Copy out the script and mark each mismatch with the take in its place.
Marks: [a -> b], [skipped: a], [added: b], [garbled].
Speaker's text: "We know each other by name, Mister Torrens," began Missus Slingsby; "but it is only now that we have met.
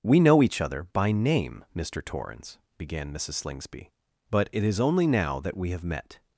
"We know each other by name, Mister Torrens," began Missus Slingsby; "but it is only now that we have met.